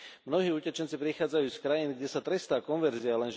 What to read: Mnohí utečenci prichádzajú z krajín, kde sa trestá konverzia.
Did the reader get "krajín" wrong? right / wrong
right